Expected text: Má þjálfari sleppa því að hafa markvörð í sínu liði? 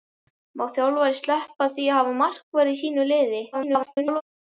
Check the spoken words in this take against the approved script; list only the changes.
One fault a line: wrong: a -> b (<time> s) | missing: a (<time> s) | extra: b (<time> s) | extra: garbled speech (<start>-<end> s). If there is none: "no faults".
extra: garbled speech (3.5-4.2 s)